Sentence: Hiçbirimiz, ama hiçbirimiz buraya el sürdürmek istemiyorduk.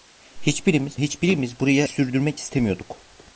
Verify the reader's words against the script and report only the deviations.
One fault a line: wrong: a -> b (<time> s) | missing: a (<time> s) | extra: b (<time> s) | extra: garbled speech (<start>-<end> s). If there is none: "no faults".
missing: ama (0.9 s)
missing: el (1.9 s)